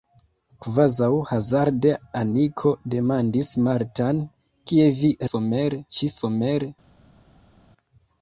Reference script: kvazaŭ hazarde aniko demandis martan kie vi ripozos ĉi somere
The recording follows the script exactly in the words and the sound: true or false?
false